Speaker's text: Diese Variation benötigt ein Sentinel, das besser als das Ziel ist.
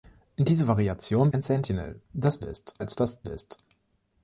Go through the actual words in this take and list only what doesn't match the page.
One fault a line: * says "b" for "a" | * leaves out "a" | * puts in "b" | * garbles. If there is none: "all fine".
* leaves out "benötigt"
* says "ist" for "besser"
* leaves out "Ziel"